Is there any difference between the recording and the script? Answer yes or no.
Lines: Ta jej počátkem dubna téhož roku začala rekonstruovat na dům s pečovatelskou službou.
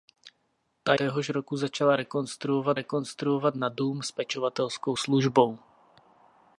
yes